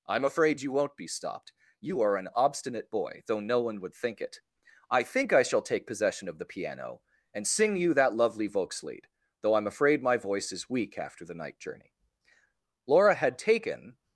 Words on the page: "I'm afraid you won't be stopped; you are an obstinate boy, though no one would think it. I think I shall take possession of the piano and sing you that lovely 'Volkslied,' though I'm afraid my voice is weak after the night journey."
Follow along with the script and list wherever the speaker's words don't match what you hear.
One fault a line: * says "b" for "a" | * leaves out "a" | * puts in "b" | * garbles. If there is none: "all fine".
* puts in "Laura had taken"